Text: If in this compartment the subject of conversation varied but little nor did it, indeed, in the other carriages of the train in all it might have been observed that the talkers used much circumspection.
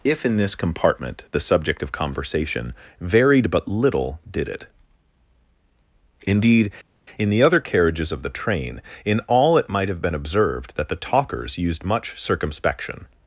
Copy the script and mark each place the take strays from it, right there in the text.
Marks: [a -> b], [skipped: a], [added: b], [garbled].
If in this compartment the subject of conversation varied but little [skipped: nor] did it, indeed, in the other carriages of the train in all it might have been observed that the talkers used much circumspection.